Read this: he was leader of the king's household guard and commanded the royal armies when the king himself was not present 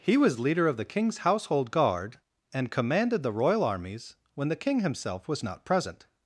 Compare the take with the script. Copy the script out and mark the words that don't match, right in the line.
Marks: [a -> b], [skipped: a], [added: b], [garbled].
he was leader of the king's household guard and commanded the royal armies when the king himself was not present